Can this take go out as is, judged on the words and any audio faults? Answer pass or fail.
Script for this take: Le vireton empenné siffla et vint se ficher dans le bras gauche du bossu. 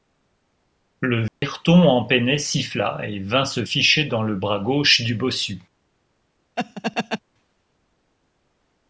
fail